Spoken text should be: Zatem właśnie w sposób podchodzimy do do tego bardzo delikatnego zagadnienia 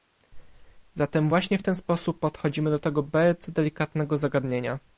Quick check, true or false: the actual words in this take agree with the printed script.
false